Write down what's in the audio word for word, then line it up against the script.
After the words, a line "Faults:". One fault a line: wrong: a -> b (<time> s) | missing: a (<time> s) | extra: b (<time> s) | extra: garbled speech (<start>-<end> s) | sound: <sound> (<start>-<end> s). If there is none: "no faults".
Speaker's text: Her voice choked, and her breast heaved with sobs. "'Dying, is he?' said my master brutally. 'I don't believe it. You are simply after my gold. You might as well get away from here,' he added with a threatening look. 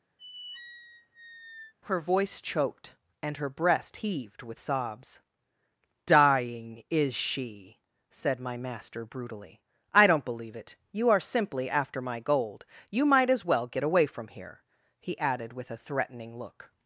Her voice choked, and her breast heaved with sobs. "'Dying, is she?' said my master brutally. 'I don't believe it. You are simply after my gold. You might as well get away from here,' he added with a threatening look.
Faults:
sound: squeak (0.2-1.7 s)
wrong: he -> she (7.2 s)